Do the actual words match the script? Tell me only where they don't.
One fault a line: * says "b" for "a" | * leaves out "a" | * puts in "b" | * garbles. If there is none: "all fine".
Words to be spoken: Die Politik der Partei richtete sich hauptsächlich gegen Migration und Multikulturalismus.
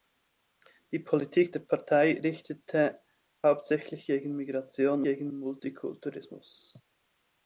* leaves out "sich"
* says "gegen" for "und"